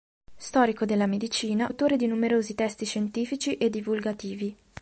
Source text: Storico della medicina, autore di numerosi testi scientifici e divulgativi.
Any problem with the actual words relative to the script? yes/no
no